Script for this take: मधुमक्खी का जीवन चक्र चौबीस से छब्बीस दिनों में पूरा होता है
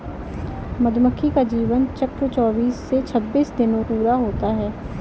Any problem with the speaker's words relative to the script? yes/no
yes